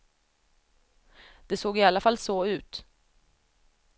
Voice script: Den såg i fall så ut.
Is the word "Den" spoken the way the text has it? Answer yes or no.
no